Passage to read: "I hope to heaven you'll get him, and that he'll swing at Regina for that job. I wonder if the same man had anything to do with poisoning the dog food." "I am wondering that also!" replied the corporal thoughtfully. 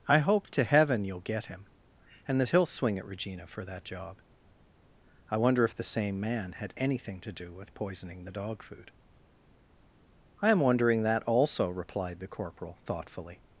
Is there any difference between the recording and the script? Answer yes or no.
no